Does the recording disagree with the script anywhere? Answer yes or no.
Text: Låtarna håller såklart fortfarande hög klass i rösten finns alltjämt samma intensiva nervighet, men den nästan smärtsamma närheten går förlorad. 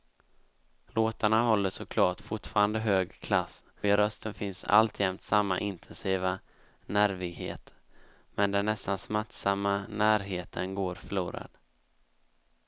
no